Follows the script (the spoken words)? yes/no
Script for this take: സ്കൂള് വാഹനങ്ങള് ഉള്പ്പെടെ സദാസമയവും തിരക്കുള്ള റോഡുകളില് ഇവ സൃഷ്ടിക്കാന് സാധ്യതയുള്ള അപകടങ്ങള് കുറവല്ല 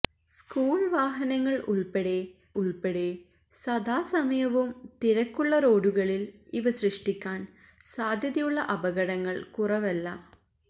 no